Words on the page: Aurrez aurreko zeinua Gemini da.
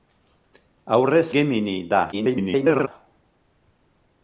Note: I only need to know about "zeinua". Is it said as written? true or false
false